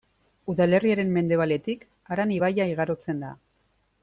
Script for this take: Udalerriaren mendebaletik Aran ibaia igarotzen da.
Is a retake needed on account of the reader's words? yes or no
no